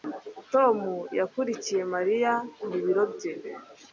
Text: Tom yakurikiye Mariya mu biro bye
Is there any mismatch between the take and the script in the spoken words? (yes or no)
no